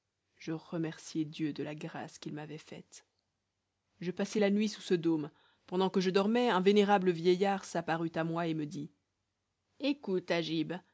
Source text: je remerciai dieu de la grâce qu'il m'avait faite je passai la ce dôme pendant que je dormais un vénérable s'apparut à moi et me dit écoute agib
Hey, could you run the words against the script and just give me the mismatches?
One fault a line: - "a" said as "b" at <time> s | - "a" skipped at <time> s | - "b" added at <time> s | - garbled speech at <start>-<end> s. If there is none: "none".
- "nuit sous" added at 4.5 s
- "vieillard" added at 7.1 s